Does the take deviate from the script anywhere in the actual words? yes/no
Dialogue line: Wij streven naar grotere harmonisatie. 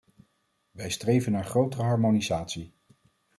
no